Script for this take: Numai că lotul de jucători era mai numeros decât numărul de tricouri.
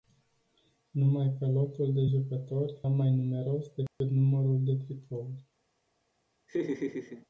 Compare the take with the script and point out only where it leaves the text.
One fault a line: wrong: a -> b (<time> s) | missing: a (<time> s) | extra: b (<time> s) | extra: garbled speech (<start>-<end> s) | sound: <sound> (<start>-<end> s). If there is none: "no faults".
missing: era (2.8 s)
sound: dropout (3.9-4.0 s)
sound: laugh (6.5-7.3 s)